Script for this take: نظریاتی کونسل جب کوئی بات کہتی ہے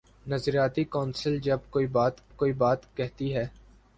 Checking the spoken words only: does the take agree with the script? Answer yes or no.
no